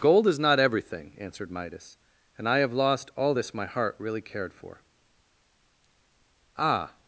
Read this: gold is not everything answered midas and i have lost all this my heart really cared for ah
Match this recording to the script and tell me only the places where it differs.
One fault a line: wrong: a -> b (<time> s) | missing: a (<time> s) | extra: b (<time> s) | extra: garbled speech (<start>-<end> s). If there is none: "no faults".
no faults